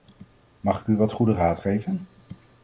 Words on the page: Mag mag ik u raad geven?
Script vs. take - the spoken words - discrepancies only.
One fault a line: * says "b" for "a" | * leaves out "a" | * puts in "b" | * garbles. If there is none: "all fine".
* leaves out "mag"
* puts in "wat goede"